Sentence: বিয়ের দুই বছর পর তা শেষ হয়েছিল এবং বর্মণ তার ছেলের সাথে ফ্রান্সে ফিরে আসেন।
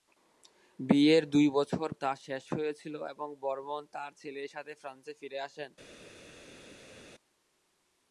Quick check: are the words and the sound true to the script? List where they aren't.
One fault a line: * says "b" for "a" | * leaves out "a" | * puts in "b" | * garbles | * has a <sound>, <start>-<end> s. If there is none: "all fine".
* leaves out "পর"